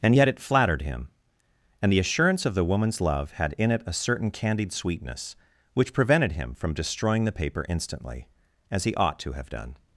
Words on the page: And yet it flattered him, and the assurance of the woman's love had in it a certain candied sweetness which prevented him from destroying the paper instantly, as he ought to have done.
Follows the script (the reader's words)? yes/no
yes